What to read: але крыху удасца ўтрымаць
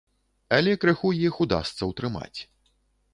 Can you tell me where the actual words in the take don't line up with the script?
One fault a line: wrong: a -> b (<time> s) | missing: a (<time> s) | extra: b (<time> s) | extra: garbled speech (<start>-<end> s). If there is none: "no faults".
extra: іх (1.3 s)